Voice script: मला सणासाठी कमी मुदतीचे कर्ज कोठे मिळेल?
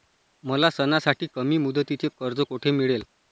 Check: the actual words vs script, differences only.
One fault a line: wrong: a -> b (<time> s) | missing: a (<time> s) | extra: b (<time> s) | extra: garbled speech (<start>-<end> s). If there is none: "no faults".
no faults